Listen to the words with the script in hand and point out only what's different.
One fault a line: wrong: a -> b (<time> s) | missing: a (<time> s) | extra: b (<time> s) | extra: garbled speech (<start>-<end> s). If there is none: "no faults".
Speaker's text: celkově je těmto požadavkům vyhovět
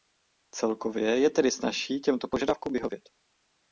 extra: tedy snazší (1.3 s)